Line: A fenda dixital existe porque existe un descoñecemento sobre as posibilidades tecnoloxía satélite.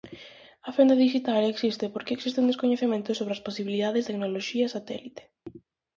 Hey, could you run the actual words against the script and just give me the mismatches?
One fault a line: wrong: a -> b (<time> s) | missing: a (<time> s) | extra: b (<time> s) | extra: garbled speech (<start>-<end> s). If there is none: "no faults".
no faults